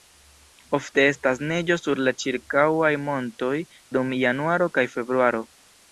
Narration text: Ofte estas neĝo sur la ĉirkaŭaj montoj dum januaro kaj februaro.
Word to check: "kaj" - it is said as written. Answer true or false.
true